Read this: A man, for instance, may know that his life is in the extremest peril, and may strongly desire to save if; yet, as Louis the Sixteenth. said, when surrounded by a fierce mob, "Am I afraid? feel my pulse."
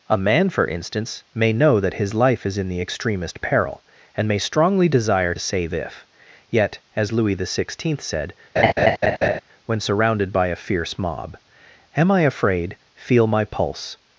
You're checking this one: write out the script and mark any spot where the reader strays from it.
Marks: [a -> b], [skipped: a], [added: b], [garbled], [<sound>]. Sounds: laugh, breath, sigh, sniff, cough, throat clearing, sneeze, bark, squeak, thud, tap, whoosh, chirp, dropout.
A man, for instance, may know that his life is in the extremest peril, and may strongly desire [skipped: to] save if; yet, as Louis the Sixteenth. said, [laugh] when surrounded by a fierce mob, "Am I afraid? feel my pulse."